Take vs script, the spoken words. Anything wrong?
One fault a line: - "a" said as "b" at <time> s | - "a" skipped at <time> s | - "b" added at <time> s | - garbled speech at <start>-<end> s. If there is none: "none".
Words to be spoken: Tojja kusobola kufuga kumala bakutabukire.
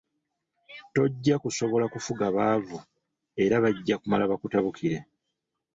- "baavu era bajja" added at 2.4 s